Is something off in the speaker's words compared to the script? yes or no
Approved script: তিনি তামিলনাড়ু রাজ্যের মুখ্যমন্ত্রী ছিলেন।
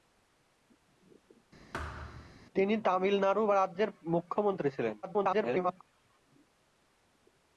yes